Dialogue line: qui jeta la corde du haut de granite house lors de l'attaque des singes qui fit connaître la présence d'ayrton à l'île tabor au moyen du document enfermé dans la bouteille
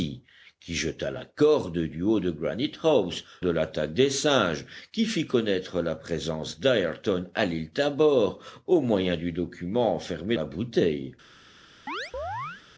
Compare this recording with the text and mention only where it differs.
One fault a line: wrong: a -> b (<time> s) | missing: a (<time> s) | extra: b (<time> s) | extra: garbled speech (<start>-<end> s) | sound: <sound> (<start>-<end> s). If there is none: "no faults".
missing: lors (3.2 s)
missing: dans (10.4 s)
sound: chirp (11.9-12.6 s)